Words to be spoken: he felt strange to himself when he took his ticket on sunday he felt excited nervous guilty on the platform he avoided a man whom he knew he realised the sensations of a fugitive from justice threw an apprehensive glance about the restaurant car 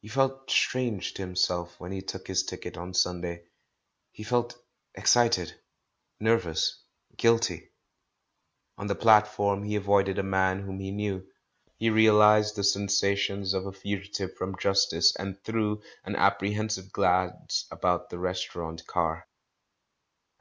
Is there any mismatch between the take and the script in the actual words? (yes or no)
yes